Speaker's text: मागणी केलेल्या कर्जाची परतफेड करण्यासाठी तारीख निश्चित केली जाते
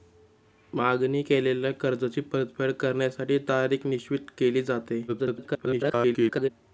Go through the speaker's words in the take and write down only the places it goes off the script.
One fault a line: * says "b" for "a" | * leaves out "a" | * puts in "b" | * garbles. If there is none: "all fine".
* garbles